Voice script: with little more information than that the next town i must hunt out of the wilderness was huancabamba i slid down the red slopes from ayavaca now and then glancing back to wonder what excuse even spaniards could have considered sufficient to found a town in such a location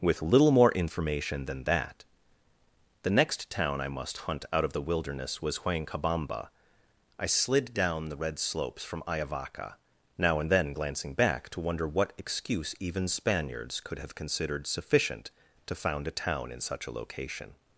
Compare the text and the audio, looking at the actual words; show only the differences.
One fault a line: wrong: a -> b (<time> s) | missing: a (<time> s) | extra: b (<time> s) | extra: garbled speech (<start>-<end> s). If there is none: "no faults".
no faults